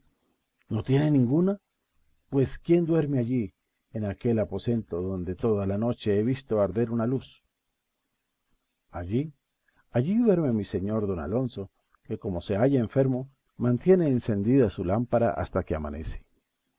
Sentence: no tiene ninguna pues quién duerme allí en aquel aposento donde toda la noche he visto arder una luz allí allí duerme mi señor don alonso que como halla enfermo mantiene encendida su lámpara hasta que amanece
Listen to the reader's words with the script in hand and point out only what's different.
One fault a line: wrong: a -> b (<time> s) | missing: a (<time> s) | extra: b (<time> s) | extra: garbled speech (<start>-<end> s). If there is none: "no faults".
extra: se (12.4 s)